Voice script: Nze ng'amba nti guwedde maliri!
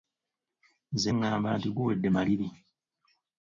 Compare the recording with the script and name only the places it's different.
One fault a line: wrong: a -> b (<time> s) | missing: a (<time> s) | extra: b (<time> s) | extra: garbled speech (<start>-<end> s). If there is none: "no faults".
no faults